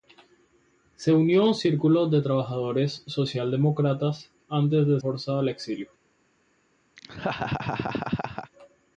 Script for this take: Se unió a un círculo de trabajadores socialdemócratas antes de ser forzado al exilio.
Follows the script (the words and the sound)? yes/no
no